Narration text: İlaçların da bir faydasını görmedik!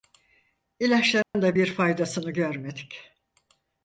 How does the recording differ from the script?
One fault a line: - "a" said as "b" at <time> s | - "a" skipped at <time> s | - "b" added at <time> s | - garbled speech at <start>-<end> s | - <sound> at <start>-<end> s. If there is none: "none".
- dropout at 1.2-1.3 s